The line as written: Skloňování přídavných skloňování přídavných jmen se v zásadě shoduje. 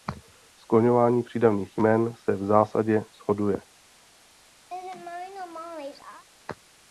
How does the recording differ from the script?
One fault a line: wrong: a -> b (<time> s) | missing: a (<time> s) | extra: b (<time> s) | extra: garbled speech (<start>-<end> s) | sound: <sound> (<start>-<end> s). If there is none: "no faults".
missing: skloňování přídavných (1.8 s)
sound: laugh (4.7-6.2 s)